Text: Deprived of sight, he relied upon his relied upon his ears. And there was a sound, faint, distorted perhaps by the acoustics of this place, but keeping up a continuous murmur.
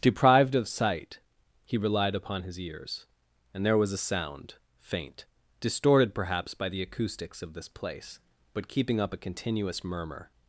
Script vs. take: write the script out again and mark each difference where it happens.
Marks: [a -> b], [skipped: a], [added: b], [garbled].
Deprived of sight, he relied upon his [skipped: relied upon his] ears. And there was a sound, faint, distorted perhaps by the acoustics of this place, but keeping up a continuous murmur.